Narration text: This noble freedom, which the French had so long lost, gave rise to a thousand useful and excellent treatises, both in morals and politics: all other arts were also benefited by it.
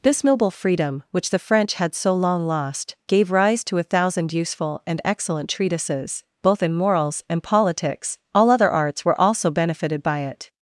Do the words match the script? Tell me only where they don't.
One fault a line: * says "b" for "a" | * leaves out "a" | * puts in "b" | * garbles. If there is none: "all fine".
all fine